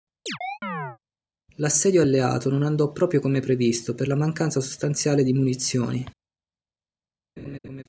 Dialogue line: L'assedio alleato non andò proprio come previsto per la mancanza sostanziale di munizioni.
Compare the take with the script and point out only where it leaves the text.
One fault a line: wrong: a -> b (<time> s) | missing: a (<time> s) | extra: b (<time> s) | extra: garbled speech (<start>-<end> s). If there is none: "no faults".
no faults